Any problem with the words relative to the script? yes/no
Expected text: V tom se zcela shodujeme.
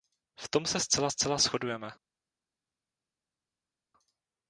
yes